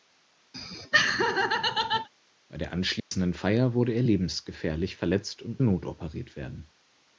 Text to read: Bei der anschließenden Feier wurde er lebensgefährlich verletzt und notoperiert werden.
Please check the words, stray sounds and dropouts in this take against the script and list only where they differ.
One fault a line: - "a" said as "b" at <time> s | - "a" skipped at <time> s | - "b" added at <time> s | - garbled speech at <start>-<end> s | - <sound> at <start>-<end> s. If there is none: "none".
- laugh at 0.5-2.1 s
- dropout at 3.0-3.1 s